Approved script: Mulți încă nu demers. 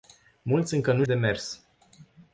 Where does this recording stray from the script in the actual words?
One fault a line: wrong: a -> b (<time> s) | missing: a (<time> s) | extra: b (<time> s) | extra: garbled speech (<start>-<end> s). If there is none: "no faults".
no faults